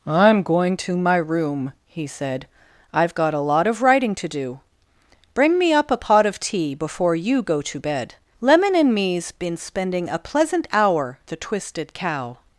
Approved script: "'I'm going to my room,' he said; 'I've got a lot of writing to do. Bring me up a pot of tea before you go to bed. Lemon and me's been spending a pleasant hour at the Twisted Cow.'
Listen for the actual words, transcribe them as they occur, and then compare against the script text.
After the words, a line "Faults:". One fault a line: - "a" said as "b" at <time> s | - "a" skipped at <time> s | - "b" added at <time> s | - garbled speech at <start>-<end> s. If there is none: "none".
"'I'm going to my room,' he said; 'I've got a lot of writing to do. Bring me up a pot of tea before you go to bed. Lemon and me's been spending a pleasant hour the Twisted Cow.'
Faults:
- "at" skipped at 11.2 s